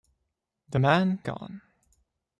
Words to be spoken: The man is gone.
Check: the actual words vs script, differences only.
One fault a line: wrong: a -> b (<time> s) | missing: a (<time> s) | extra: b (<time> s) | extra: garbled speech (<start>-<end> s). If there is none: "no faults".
missing: is (1.2 s)